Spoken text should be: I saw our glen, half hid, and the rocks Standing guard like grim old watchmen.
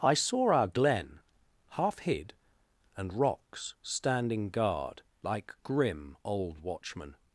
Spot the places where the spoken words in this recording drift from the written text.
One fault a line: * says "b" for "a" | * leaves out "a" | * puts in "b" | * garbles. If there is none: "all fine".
* leaves out "the"